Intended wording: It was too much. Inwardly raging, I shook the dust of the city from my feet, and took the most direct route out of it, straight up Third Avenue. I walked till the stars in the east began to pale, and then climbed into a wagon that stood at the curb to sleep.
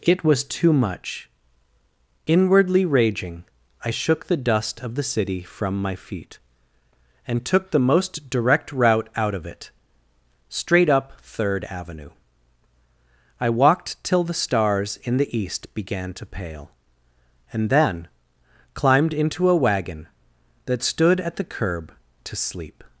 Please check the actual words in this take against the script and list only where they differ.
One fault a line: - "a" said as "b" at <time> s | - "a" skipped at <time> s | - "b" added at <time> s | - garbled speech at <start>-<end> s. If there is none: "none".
none